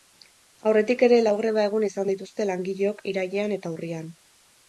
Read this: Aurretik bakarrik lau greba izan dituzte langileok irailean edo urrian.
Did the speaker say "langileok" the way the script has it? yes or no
yes